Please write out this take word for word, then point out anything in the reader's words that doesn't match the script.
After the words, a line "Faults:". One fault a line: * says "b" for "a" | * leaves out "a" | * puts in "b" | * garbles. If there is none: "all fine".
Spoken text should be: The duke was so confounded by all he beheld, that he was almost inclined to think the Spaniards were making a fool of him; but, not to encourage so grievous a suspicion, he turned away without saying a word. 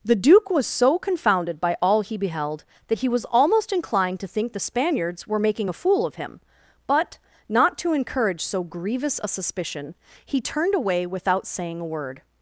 The duke was so confounded by all he beheld, that he was almost inclined to think the Spaniards were making a fool of him; but, not to encourage so grievous a suspicion, he turned away without saying a word.
Faults:
all fine